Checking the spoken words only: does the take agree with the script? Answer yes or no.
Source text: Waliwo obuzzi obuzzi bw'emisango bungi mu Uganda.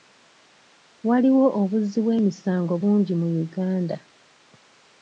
no